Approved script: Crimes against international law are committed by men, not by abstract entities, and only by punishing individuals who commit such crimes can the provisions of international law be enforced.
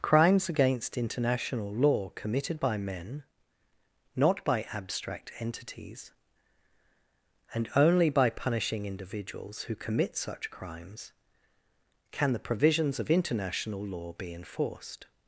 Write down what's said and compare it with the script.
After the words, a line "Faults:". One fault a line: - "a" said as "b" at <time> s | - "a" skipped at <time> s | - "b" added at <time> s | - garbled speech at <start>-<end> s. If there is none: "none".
Crimes against international law committed by men, not by abstract entities, and only by punishing individuals who commit such crimes can the provisions of international law be enforced.
Faults:
- "are" skipped at 2.1 s